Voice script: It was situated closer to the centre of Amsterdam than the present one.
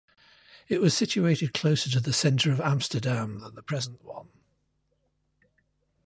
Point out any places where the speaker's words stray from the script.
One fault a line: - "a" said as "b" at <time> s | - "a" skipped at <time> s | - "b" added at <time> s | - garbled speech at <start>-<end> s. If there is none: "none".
none